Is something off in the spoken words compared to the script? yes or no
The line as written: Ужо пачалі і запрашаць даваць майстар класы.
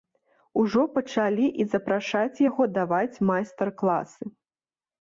yes